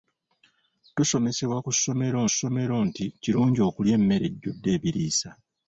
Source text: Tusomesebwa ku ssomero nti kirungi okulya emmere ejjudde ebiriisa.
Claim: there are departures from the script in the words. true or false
true